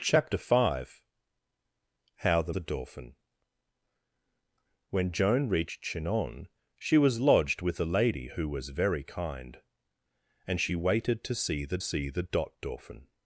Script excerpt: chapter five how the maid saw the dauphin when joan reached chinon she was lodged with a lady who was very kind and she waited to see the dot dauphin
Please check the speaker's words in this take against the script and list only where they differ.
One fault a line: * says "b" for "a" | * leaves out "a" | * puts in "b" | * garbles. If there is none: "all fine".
* leaves out "maid saw"
* puts in "see the"